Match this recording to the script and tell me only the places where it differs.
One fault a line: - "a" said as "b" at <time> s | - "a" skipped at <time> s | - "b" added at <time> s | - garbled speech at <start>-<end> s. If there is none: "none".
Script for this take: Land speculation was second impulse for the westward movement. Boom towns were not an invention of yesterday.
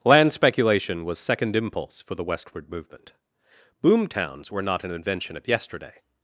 none